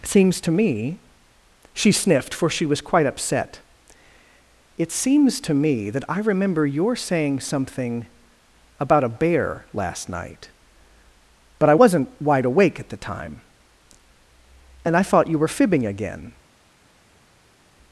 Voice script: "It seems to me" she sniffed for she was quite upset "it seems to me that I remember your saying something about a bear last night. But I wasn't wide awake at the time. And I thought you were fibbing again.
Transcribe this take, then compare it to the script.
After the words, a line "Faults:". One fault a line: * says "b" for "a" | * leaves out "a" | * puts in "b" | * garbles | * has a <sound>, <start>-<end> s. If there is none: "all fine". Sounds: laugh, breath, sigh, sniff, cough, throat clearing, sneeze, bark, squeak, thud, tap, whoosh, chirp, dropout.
seems to me" she sniffed for she was quite upset "it seems to me that I remember your saying something about a bear last night. But I wasn't wide awake at the time. And I thought you were fibbing again.
Faults:
* leaves out "It"